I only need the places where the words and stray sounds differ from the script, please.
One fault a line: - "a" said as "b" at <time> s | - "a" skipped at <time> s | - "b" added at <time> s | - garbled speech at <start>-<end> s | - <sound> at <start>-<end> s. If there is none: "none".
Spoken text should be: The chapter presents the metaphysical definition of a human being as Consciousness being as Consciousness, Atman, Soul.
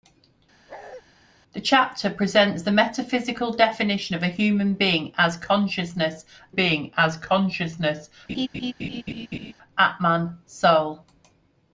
- bark at 0.7-1.0 s
- laugh at 8.3-9.5 s